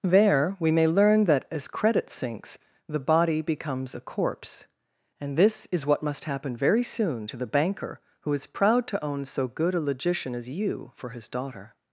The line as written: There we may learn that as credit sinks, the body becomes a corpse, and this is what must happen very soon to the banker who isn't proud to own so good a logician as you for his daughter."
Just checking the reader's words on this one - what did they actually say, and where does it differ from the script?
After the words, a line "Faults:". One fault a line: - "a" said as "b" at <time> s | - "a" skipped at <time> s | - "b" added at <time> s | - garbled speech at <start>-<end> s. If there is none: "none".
There we may learn that as credit sinks, the body becomes a corpse, and this is what must happen very soon to the banker who is proud to own so good a logician as you for his daughter."
Faults:
- "isn't" said as "is" at 8.3 s